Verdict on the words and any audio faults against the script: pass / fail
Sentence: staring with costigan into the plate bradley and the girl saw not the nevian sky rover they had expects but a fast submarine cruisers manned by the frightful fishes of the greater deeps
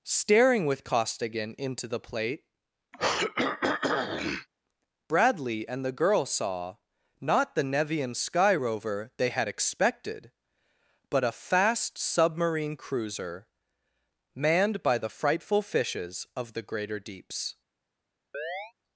fail